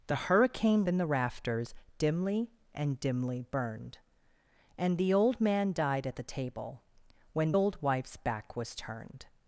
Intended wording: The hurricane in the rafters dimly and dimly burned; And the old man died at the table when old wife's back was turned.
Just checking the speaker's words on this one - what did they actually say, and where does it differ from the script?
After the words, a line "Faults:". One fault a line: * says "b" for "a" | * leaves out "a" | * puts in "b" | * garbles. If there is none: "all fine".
The hurricane in the rafters dimly and dimly burned; And the old man died at the table when old wife's back was turned.
Faults:
all fine